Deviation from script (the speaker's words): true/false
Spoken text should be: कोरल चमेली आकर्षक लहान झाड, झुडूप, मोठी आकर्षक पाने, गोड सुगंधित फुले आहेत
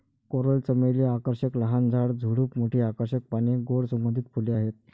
false